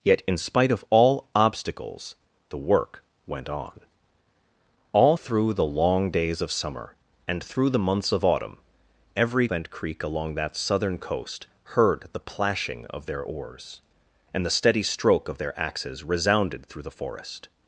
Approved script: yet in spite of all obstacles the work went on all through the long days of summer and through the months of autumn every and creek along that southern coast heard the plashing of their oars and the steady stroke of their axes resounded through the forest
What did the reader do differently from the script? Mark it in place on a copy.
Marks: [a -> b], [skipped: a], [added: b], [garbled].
yet in spite of all obstacles the work went on all through the long days of summer and through the months of autumn every and creek along that southern coast heard the plashing of their oars and the steady stroke of their axes resounded through the forest